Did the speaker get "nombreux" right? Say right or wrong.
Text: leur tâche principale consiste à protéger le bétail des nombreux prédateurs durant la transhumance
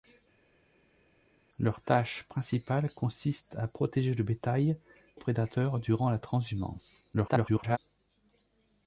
wrong